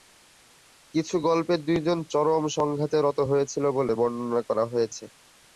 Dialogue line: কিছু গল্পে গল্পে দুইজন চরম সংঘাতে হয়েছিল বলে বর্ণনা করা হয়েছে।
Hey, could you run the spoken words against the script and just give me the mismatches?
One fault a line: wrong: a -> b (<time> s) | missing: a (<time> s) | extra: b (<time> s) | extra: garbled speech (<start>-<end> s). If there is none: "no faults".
missing: গল্পে (1.5 s)
extra: রত (3.0 s)